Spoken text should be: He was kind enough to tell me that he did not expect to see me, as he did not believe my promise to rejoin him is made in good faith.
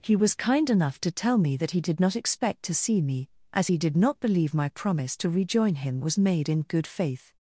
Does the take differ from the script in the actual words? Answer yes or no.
yes